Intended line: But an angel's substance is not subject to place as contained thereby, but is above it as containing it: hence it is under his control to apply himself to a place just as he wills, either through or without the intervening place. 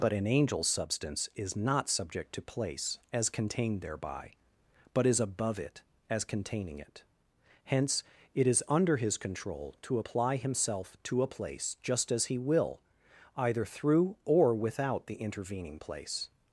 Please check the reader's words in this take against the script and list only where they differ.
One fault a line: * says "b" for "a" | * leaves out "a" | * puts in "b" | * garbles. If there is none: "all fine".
* says "will" for "wills"